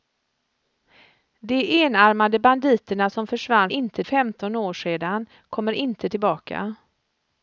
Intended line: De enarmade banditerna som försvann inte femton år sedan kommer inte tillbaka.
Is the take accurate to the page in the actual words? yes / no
yes